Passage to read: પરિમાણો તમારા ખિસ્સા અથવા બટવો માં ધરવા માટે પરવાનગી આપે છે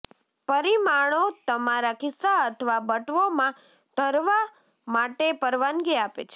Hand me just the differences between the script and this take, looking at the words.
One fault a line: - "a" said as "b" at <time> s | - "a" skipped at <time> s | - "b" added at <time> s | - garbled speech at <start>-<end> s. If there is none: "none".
none